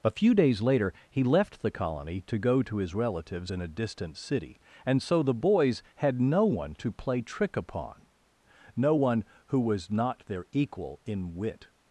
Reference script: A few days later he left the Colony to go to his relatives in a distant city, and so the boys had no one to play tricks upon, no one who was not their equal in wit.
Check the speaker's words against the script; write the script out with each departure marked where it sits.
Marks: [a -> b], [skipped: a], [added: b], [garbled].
A few days later he left the Colony to go to his relatives in a distant city, and so the boys had no one to play [tricks -> trick] upon, no one who was not their equal in wit.